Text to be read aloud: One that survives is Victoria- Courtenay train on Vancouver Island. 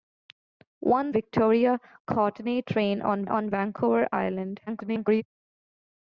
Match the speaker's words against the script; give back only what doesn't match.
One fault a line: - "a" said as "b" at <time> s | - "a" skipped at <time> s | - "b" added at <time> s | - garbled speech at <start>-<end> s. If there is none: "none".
- "that survives is" skipped at 1.1 s
- "on" added at 3.3 s
- garbled speech at 4.7-5.2 s